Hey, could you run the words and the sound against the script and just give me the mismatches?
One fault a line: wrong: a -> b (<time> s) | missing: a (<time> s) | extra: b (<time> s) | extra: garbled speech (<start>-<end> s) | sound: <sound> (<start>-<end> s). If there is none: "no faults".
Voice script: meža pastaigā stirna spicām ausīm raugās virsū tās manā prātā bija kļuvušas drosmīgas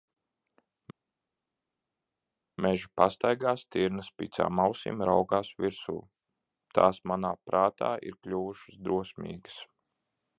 wrong: bija -> ir (8.1 s)